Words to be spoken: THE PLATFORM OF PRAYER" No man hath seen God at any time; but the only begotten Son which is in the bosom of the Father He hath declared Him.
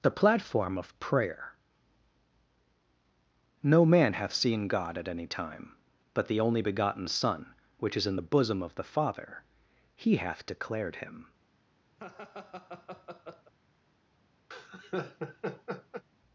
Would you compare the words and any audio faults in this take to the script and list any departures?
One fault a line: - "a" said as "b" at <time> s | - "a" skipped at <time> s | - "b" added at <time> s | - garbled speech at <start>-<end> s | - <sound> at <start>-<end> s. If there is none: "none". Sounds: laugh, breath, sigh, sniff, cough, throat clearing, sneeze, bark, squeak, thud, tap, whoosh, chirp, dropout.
- laugh at 12.0-13.5 s
- laugh at 14.5-16.0 s